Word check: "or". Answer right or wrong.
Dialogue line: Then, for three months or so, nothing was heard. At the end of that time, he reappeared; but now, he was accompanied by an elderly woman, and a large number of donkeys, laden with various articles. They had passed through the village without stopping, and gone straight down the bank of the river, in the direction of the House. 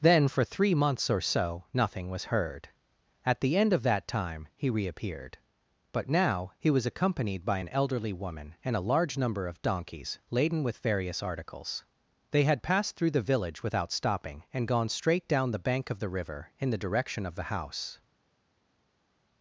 right